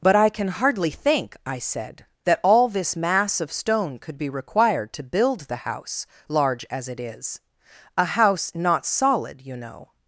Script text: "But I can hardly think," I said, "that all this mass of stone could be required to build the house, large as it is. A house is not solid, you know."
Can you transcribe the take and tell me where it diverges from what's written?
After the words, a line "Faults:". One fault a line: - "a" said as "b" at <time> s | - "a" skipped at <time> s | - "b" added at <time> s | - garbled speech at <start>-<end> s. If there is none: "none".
"But I can hardly think," I said, "that all this mass of stone could be required to build the house, large as it is. A house not solid, you know."
Faults:
- "is" skipped at 8.5 s